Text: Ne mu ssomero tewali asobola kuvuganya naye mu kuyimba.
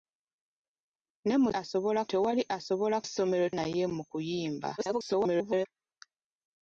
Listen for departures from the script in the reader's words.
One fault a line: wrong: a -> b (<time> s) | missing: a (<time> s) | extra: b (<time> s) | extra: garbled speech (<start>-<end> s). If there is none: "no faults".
wrong: ssomero -> asobola (1.6 s)
wrong: kuvuganya -> ssomero (3.1 s)
extra: garbled speech (4.8-5.7 s)